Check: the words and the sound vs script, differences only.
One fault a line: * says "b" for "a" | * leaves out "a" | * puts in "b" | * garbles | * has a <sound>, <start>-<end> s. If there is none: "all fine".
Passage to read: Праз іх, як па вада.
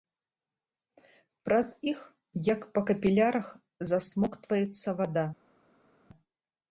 * puts in "капілярах засмоктваецца"